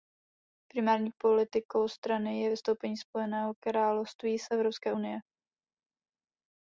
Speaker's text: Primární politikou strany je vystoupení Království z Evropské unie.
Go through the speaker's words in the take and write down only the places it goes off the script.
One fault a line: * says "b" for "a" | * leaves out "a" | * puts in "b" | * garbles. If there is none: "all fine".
* puts in "Spojeného"